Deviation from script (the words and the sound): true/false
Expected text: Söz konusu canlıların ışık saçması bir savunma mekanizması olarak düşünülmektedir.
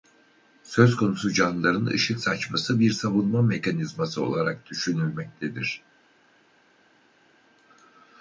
false